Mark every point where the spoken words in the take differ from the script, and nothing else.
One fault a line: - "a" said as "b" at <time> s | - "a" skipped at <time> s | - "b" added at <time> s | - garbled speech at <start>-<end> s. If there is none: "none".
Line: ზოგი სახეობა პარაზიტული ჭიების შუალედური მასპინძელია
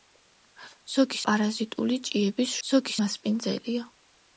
- "სახეობა" skipped at 1.2 s
- "შუალედური" said as "ზოგი" at 2.7 s